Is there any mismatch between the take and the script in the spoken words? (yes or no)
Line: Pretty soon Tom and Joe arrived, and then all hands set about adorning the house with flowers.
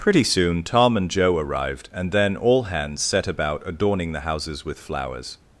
yes